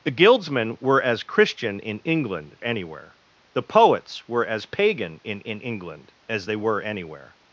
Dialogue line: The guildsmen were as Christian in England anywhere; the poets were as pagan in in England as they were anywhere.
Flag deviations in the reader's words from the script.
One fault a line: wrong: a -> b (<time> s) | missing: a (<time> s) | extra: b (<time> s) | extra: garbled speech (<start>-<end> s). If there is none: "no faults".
no faults